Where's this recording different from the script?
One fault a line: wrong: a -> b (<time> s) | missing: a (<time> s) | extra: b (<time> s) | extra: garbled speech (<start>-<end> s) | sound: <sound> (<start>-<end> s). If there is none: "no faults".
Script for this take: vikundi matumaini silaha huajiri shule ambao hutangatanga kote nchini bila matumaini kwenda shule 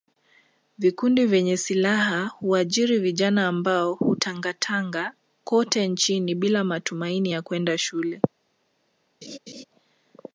wrong: matumaini -> vyenye (1.2 s)
wrong: shule -> vijana (3.0 s)
extra: ya (7.3 s)
sound: laugh (9.2-9.6 s)